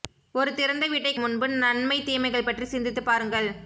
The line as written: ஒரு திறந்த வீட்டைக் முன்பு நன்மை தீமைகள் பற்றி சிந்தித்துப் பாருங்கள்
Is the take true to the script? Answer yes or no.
yes